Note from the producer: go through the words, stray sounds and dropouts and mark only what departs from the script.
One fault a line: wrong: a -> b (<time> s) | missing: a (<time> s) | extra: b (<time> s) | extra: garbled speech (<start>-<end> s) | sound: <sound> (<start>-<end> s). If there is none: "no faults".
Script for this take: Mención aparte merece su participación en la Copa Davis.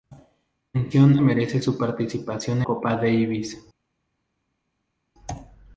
missing: aparte (1.2 s)
missing: en la (2.6 s)